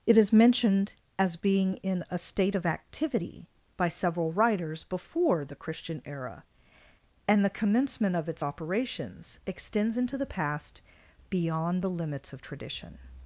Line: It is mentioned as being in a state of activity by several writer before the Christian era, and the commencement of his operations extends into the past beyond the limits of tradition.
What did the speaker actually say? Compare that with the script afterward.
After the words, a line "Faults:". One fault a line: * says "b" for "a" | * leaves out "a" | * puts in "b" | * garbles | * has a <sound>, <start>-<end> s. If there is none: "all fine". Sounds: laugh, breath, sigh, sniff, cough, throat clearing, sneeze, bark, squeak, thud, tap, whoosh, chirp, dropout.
It is mentioned as being in a state of activity by several writers before the Christian era, and the commencement of its operations extends into the past beyond the limits of tradition.
Faults:
* says "writers" for "writer"
* says "its" for "his"